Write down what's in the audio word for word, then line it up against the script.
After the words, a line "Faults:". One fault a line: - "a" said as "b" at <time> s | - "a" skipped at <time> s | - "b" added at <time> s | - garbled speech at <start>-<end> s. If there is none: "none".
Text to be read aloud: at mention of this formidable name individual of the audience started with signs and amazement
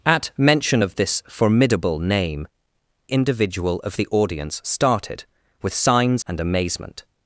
at mention of this formidable name individual of the audience started with signs and amazement
Faults:
none